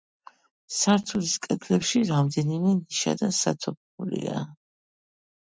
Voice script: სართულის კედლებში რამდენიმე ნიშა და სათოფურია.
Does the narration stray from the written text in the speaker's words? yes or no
no